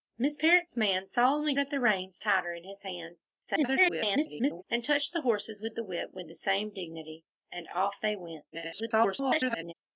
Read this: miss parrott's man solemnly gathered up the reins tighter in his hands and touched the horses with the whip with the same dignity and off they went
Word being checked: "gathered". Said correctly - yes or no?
no